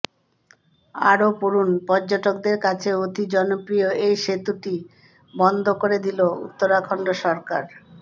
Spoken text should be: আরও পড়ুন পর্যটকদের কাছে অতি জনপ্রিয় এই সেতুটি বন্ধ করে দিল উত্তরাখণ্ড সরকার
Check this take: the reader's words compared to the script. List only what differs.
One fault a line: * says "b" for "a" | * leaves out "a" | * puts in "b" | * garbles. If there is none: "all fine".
all fine